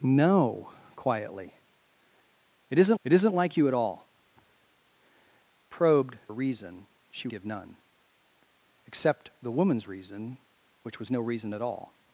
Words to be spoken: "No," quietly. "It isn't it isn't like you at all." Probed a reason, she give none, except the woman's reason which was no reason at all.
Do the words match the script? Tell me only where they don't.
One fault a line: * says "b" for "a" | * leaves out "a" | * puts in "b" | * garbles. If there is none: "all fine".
all fine